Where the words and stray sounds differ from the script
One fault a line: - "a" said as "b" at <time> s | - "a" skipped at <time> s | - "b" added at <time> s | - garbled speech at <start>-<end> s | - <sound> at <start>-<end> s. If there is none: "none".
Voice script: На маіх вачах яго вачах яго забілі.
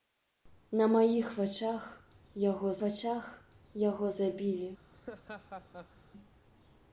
- laugh at 4.9-6.0 s